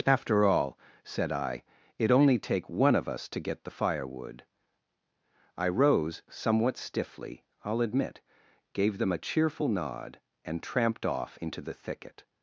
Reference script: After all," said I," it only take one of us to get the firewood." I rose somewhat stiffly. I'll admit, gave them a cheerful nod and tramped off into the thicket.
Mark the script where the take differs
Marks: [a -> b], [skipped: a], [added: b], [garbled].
After all," said I," it only take one of us to get the firewood." I rose somewhat stiffly. I'll admit, gave them a cheerful nod and tramped off into the thicket.